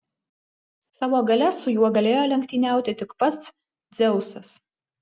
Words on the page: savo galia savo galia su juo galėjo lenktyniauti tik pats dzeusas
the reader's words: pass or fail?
fail